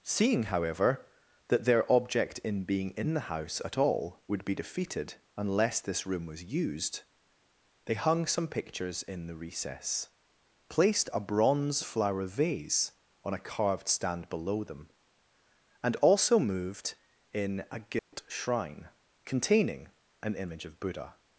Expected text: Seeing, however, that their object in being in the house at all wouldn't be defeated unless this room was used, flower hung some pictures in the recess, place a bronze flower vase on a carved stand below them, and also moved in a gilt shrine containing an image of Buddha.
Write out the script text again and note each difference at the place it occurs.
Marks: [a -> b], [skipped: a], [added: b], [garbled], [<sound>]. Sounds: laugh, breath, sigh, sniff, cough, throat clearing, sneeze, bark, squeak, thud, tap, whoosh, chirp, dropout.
Seeing, however, that their object in being in the house at all [wouldn't -> would] be defeated unless this room was used, [flower -> they] hung some pictures in the recess, [place -> placed] a bronze flower vase on a carved stand below them, and also moved in a gilt [dropout] shrine containing an image of Buddha.